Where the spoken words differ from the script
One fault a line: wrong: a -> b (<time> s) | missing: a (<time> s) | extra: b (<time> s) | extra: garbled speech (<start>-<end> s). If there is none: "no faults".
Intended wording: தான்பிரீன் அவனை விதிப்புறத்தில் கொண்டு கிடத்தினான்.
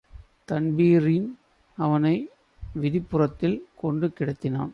no faults